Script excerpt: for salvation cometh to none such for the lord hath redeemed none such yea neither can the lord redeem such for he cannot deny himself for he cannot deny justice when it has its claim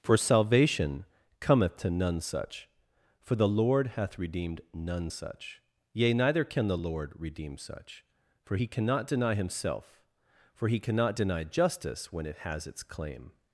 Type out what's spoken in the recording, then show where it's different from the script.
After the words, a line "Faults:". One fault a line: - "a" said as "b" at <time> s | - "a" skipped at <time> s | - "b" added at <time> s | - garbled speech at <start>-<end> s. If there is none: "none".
for salvation cometh to none such for the lord hath redeemed none such yea neither can the lord redeem such for he cannot deny himself for he cannot deny justice when it has its claim
Faults:
none